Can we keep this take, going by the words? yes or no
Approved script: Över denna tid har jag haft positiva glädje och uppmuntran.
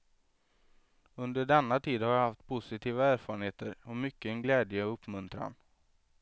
no